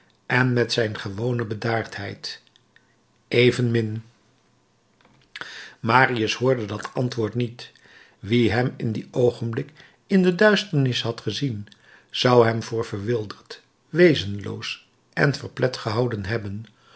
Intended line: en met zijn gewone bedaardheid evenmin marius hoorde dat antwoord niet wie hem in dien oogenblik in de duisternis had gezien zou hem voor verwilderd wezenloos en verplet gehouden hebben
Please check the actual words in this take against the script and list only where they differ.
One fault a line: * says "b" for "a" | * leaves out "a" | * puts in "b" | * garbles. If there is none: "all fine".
all fine